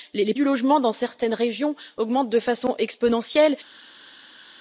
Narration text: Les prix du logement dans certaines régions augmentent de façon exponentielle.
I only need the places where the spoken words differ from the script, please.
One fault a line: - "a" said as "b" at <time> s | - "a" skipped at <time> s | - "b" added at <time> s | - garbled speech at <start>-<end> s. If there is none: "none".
- "prix" skipped at 0.3 s